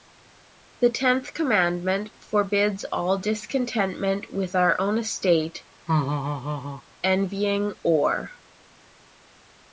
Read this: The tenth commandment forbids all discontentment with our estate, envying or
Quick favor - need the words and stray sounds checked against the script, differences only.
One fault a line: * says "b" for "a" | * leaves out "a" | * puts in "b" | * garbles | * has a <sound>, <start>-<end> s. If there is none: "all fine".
* puts in "own"
* has a laugh, 5.9-6.8 s